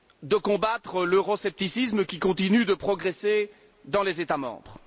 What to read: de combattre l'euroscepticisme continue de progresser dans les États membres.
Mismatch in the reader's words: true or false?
true